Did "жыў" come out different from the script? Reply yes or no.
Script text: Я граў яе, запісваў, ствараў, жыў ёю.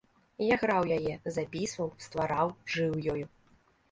no